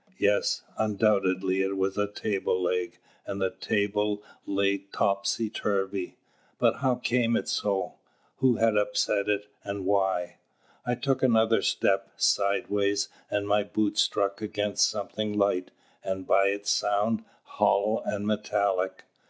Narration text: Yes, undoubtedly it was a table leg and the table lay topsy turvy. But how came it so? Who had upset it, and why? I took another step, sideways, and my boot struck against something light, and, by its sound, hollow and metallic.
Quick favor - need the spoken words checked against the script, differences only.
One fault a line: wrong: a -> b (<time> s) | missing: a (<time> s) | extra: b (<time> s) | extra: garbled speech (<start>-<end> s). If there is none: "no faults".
no faults